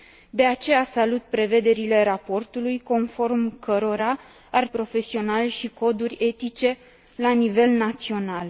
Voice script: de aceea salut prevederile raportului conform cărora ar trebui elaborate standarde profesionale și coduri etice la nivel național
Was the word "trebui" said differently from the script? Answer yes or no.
yes